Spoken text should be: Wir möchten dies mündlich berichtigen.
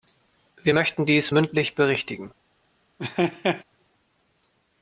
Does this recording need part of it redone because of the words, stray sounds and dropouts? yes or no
yes